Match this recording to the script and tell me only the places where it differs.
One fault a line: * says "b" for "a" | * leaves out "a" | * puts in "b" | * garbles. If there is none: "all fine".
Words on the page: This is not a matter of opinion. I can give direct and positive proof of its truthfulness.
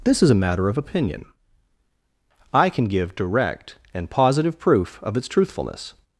* leaves out "not"